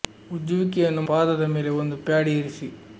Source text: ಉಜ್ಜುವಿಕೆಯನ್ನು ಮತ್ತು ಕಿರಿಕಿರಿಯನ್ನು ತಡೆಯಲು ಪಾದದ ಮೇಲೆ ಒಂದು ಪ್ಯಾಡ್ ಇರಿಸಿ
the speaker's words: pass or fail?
fail